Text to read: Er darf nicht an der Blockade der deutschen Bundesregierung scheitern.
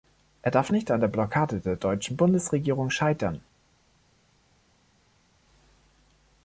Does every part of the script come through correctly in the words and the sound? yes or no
yes